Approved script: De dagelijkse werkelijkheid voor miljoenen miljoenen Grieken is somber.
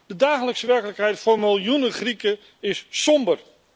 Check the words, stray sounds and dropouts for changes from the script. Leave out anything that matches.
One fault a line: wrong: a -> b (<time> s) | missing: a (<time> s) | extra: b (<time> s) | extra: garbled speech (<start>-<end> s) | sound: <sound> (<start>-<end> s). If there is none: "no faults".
missing: miljoenen (1.9 s)